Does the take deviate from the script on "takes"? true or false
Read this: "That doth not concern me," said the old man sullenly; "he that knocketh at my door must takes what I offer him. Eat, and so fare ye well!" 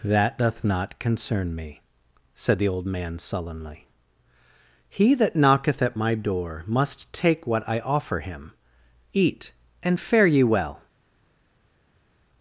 true